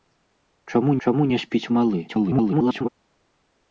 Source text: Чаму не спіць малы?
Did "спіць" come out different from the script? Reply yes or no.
no